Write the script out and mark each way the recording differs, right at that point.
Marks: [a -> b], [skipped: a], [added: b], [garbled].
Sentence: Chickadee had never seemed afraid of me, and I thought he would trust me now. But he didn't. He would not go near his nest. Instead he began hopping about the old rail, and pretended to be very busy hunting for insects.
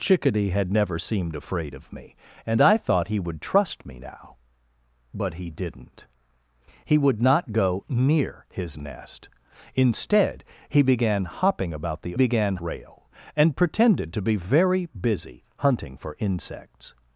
Chickadee had never seemed afraid of me, and I thought he would trust me now. But he didn't. He would not go near his nest. Instead he began hopping about the [old -> began] rail, and pretended to be very busy hunting for insects.